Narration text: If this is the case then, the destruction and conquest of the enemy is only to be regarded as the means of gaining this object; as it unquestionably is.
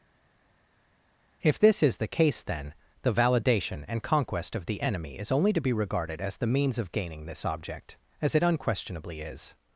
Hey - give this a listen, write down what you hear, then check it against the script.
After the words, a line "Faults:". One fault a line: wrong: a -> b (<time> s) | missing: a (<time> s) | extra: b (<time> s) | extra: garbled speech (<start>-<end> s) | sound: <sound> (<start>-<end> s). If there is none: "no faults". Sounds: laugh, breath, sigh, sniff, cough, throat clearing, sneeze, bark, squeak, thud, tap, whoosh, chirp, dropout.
If this is the case then, the validation and conquest of the enemy is only to be regarded as the means of gaining this object; as it unquestionably is.
Faults:
wrong: destruction -> validation (3.1 s)